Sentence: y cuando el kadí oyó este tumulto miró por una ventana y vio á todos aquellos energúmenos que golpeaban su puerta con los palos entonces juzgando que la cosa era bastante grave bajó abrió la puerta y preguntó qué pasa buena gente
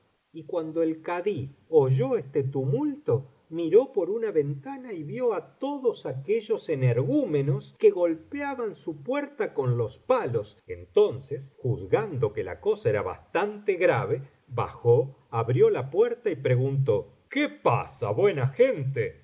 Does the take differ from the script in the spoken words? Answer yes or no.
no